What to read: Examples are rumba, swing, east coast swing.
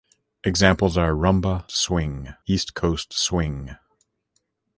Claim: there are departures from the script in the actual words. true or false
false